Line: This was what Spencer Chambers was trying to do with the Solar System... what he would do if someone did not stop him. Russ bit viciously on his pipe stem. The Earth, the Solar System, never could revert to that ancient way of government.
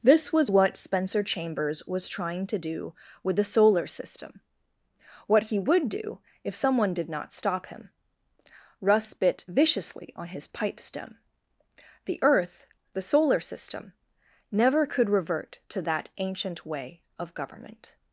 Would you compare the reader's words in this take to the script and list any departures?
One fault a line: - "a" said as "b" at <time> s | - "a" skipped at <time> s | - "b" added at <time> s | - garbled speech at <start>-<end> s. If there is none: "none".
none